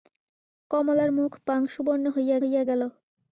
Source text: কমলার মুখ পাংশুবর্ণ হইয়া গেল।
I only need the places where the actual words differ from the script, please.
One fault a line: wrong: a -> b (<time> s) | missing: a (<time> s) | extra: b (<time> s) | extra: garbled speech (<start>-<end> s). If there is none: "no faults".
extra: হইয়া (2.4 s)